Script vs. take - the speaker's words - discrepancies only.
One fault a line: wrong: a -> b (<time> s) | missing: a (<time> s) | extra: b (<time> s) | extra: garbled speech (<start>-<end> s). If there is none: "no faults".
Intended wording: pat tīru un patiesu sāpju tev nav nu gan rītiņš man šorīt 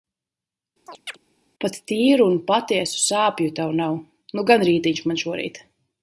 no faults